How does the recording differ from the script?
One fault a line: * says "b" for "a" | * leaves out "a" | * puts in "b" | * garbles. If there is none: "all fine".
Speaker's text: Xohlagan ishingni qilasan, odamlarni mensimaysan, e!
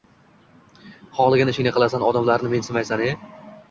all fine